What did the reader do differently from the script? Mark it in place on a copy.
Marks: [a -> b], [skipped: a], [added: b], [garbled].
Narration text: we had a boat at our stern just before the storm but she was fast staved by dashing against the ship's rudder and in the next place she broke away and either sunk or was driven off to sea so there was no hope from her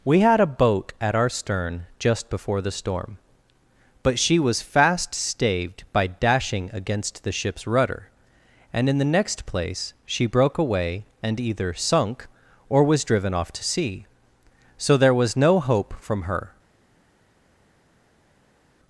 we had a boat at our stern just before the storm but she was fast staved by dashing against the ship's rudder and in the next place she broke away and either sunk or was driven off to sea so there was no hope from her